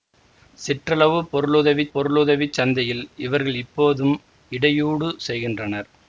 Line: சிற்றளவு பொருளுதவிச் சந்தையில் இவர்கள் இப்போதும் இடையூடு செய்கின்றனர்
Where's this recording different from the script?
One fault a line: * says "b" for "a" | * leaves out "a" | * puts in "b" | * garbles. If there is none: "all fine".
* puts in "பொருளுதவிச்"